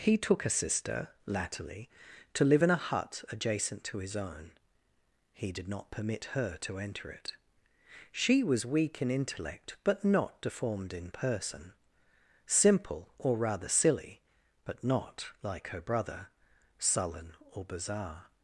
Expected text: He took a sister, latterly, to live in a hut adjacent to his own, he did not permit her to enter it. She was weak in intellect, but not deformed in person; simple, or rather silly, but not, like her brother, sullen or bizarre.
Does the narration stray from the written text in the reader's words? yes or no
no